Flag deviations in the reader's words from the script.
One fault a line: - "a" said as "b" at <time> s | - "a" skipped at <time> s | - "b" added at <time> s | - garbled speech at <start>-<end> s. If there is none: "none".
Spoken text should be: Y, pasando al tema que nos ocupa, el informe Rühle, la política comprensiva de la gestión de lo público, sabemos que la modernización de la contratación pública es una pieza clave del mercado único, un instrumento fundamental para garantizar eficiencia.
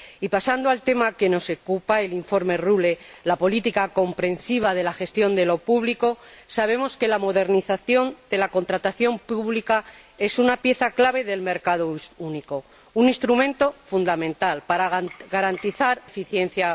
none